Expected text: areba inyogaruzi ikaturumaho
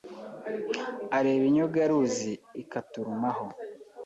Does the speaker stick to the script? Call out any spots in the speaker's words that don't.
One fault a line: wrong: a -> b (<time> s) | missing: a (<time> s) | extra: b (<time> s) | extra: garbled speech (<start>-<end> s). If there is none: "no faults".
no faults